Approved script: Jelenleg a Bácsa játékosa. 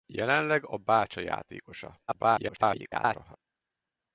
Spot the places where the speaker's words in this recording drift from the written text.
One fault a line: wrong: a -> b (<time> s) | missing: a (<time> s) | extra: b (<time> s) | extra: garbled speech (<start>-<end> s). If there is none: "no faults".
extra: garbled speech (2.1-3.4 s)